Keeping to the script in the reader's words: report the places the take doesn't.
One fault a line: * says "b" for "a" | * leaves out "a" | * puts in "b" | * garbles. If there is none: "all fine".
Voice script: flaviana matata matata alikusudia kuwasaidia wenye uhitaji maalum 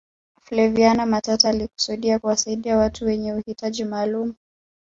* leaves out "matata"
* puts in "watu"